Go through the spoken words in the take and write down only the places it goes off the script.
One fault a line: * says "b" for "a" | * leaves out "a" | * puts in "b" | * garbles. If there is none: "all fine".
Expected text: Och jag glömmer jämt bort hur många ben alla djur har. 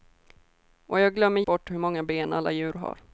* leaves out "jämt"